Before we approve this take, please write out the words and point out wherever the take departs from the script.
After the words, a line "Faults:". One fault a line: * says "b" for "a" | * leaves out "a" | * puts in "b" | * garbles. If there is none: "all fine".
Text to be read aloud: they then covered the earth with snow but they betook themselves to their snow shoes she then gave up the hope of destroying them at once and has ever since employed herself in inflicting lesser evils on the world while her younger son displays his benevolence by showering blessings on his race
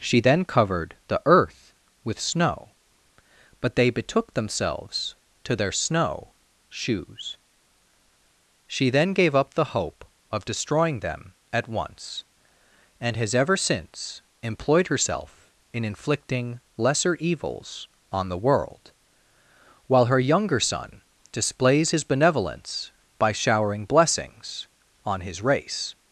she then covered the earth with snow but they betook themselves to their snow shoes she then gave up the hope of destroying them at once and has ever since employed herself in inflicting lesser evils on the world while her younger son displays his benevolence by showering blessings on his race
Faults:
* says "she" for "they"